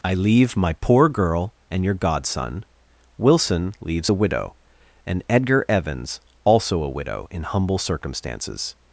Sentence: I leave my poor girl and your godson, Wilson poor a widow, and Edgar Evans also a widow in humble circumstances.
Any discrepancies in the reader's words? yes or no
yes